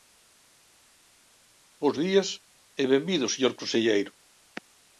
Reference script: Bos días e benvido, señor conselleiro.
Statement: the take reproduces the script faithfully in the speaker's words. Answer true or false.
true